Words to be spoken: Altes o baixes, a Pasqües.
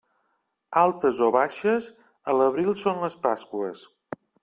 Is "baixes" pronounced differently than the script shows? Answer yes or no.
no